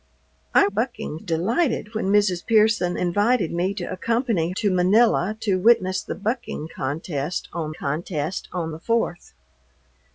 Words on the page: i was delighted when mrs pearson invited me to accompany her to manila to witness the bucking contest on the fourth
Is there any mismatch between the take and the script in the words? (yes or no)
yes